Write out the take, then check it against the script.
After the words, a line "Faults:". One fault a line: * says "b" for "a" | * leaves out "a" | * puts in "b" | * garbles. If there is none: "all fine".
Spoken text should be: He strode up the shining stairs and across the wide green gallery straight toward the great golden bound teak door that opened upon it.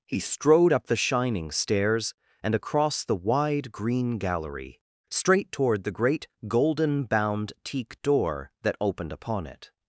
He strode up the shining stairs and across the wide green gallery straight toward the great golden bound teak door that opened upon it.
Faults:
all fine